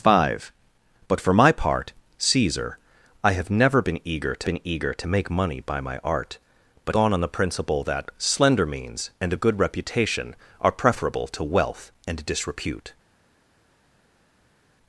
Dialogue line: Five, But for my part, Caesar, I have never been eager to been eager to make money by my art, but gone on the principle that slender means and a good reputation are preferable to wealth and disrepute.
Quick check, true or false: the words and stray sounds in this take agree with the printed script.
true